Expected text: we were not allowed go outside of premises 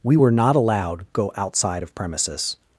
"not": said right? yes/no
yes